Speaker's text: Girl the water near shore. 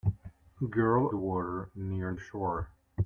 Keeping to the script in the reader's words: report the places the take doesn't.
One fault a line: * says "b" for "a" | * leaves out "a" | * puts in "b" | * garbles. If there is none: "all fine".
all fine